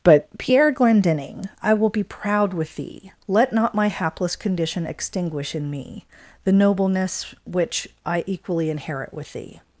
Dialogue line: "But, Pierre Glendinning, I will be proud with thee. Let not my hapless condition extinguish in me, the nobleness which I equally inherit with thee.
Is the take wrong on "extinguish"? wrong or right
right